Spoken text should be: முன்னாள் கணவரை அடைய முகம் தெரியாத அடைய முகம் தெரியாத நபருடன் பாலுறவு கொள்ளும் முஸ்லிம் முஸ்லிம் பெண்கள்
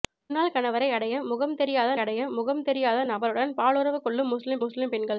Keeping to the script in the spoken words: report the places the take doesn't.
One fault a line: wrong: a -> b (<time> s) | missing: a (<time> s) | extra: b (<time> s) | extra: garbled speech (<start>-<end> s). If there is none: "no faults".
no faults